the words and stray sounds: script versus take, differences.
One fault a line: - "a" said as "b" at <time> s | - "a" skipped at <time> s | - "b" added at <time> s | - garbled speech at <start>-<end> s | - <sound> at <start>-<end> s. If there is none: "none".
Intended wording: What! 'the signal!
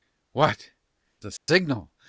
- dropout at 1.4-1.5 s